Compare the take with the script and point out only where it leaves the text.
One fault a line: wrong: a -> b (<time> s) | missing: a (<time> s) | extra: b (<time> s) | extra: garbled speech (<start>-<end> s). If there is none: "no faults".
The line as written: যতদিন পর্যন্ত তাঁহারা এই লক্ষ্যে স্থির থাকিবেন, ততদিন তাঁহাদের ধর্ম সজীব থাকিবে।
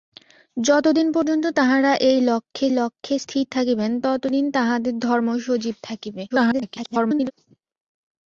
extra: লক্ষ্যে (2.7 s)
extra: garbled speech (6.3-7.3 s)